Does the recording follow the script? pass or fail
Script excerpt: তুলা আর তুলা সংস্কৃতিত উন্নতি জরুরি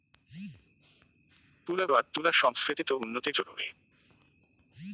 pass